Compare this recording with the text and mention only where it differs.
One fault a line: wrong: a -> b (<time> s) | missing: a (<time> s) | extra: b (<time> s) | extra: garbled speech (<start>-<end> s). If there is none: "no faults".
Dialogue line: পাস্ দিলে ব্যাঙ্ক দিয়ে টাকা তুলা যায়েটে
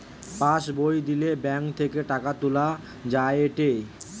extra: বই (0.8 s)
wrong: দিয়ে -> থেকে (1.8 s)